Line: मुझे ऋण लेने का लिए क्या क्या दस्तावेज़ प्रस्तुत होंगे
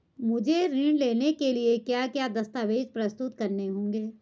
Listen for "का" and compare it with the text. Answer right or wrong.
wrong